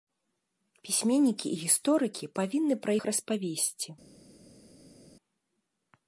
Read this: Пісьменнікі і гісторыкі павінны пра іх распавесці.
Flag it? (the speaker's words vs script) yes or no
no